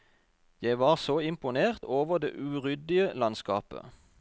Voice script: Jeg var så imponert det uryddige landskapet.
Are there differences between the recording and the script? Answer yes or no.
yes